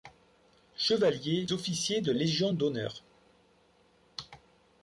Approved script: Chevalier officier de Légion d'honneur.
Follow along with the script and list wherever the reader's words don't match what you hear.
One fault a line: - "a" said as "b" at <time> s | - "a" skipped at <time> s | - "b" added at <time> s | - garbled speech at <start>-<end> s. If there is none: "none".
none